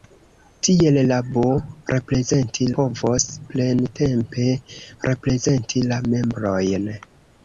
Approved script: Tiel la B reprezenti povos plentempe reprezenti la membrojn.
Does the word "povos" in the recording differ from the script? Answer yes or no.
no